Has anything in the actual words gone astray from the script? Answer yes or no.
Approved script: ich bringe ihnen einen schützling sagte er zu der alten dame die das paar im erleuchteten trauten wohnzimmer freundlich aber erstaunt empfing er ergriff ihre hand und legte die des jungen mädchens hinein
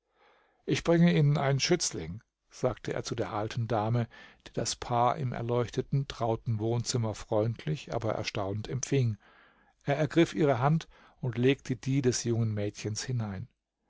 no